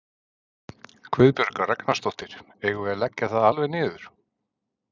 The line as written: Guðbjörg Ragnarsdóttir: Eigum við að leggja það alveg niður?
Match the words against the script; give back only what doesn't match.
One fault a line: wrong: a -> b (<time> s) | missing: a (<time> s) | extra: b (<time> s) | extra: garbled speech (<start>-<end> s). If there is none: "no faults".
no faults